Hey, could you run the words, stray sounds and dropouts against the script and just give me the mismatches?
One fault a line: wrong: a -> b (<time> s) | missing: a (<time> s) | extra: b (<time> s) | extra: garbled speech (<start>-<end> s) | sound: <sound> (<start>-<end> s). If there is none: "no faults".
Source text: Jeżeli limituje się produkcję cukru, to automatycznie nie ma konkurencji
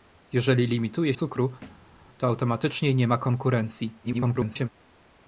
missing: się produkcję (1.1 s)
sound: thud (1.6-2.0 s)
extra: garbled speech (4.0-4.7 s)